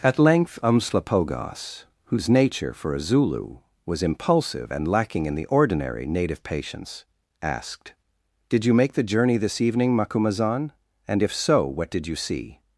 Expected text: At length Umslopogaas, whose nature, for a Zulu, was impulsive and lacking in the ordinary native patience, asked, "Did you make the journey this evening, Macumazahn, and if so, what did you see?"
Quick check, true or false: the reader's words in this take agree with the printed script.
true